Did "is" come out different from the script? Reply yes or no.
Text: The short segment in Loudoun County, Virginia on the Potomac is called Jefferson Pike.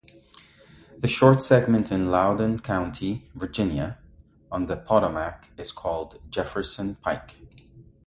no